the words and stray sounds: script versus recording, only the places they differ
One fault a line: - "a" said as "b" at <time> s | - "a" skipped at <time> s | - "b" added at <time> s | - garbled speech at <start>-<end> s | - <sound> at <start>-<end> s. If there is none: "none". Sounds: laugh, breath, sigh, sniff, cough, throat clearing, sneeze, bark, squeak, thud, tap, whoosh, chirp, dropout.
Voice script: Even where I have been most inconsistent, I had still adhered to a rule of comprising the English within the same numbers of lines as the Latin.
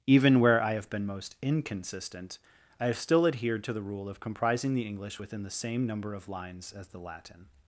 - "had" said as "have" at 2.9 s
- "a" said as "the" at 3.7 s
- "numbers" said as "number" at 5.9 s